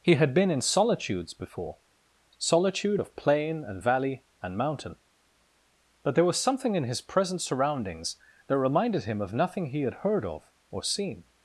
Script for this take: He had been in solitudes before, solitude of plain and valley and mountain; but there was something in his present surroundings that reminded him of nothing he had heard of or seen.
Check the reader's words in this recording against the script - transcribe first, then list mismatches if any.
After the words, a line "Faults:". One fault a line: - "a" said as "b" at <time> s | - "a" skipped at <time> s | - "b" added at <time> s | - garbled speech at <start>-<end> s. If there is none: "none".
He had been in solitudes before, solitude of plain and valley and mountain; but there was something in his present surroundings that reminded him of nothing he had heard of or seen.
Faults:
none